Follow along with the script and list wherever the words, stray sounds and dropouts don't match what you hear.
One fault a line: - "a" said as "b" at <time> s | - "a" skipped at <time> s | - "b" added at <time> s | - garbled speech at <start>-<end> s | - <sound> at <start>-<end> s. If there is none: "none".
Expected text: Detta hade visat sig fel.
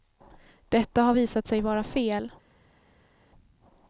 - "hade" said as "har" at 1.0 s
- "vara" added at 1.6 s